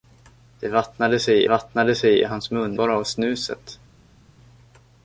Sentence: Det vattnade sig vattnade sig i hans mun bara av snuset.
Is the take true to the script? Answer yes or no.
yes